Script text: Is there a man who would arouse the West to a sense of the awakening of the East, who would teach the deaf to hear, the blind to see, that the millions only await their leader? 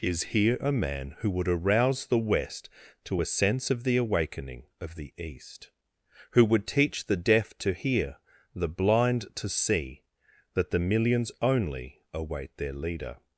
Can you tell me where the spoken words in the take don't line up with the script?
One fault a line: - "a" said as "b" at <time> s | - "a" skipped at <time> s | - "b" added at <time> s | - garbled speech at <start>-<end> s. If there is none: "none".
- "there" said as "here" at 0.2 s